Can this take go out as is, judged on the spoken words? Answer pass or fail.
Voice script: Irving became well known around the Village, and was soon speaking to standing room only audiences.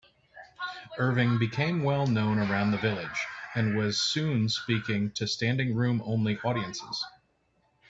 pass